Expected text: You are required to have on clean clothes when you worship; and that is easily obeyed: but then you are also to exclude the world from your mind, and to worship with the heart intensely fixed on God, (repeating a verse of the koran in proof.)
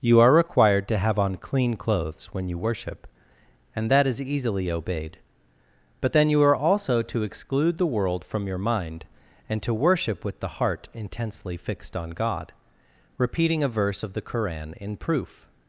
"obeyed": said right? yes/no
yes